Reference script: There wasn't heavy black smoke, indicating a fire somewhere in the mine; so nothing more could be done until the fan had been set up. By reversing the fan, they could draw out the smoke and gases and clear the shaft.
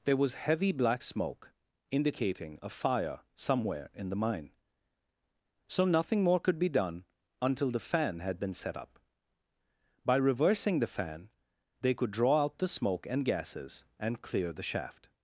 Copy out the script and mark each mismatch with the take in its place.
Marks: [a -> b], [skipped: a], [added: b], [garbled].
There [wasn't -> was] heavy black smoke, indicating a fire somewhere in the mine; so nothing more could be done until the fan had been set up. By reversing the fan, they could draw out the smoke and gases and clear the shaft.